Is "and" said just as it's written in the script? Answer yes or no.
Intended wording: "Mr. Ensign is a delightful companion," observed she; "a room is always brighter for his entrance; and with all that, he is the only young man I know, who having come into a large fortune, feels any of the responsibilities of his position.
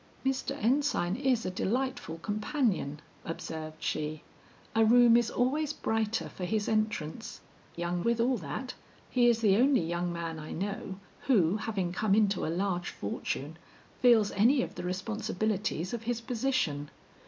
no